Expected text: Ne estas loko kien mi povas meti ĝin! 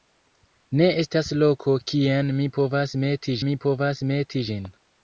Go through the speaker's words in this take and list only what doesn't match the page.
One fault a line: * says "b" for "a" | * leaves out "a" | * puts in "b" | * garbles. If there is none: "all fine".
* puts in "mi povas meti"